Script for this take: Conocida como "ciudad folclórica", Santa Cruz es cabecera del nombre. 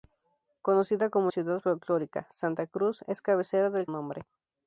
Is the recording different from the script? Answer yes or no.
no